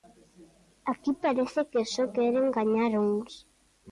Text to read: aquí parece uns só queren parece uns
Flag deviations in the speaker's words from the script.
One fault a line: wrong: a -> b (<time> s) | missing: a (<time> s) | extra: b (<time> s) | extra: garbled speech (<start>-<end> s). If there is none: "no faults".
wrong: uns -> que (1.7 s)
wrong: parece -> gañar (2.6 s)